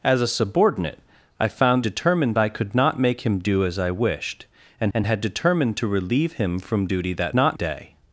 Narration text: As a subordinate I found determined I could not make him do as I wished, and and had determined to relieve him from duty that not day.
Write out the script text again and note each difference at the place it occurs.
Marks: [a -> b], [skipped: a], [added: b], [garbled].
As a subordinate I found determined I could not make him do as I wished, and and had determined to relieve him from duty that not day.